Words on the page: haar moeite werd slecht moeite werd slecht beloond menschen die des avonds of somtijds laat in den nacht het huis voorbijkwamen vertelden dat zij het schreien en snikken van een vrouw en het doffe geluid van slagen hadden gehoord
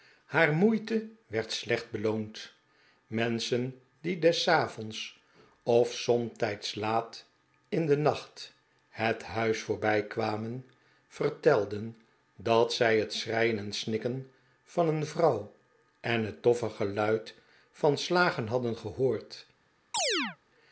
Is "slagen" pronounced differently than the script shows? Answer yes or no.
no